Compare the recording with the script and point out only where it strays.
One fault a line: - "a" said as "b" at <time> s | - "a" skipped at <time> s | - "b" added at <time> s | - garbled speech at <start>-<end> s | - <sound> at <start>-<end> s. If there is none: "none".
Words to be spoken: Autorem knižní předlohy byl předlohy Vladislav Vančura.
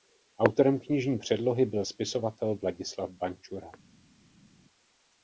- "předlohy" said as "spisovatel" at 1.8 s